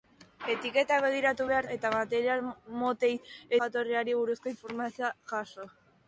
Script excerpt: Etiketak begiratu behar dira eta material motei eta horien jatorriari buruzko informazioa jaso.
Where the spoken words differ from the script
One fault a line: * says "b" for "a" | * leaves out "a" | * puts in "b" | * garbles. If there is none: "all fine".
* leaves out "dira"
* leaves out "eta horien"